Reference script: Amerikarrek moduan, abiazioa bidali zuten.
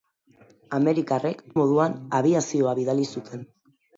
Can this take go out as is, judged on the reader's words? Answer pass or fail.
pass